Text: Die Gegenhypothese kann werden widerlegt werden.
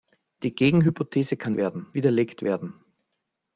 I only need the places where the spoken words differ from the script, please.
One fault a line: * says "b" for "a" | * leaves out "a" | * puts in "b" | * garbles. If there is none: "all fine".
all fine